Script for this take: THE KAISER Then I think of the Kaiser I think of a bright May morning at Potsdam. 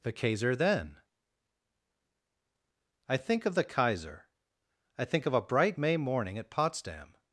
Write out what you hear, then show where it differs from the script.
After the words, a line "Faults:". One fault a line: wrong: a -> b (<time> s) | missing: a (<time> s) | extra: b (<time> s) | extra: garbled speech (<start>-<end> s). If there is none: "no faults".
THE KAISER Then I think of the Kaiser I think of a bright May morning at Potsdam.
Faults:
no faults